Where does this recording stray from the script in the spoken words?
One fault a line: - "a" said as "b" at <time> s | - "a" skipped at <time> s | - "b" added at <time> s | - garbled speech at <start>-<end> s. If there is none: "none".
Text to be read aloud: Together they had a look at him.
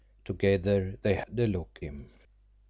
- "at" skipped at 1.8 s